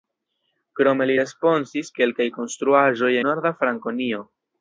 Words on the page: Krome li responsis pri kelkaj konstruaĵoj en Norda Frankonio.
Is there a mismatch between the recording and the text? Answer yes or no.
yes